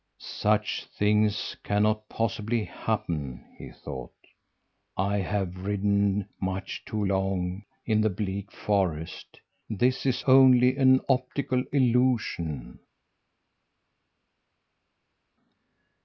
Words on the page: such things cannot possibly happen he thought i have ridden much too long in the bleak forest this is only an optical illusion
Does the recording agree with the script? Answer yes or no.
yes